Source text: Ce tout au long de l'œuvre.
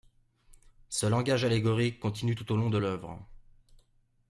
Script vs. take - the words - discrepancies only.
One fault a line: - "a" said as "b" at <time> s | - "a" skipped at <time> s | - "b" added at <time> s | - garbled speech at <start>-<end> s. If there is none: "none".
- "langage allégorique continue" added at 1.1 s